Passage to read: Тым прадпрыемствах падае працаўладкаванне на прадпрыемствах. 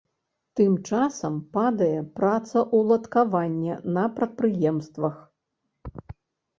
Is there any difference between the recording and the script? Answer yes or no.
yes